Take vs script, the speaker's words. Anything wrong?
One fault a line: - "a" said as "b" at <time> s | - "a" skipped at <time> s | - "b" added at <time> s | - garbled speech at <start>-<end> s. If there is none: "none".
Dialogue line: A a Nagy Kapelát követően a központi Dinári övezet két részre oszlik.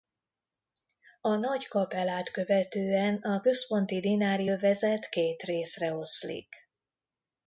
- "a" skipped at 1.4 s